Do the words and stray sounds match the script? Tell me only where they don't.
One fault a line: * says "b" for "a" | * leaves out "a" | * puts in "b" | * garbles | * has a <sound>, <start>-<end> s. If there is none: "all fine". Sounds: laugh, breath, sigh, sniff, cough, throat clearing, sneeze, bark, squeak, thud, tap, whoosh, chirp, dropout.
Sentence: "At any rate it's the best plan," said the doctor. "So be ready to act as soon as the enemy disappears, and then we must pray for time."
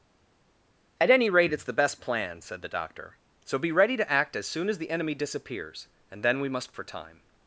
* leaves out "pray"